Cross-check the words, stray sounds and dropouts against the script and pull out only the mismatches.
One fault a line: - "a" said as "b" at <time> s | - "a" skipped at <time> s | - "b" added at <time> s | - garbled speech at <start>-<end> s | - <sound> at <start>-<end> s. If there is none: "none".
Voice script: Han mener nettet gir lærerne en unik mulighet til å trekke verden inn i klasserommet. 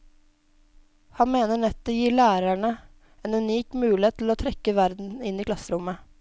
none